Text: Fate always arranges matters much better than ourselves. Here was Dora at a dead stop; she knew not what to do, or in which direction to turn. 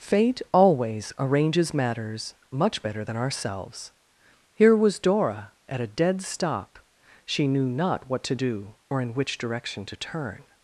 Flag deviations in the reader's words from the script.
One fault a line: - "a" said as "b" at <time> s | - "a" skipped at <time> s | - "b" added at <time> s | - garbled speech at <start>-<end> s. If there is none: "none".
none